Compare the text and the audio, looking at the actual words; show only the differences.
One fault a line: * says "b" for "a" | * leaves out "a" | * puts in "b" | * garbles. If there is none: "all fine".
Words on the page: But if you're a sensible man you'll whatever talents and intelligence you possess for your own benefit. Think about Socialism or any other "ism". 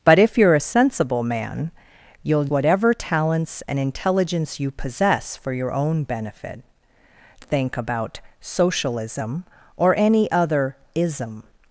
all fine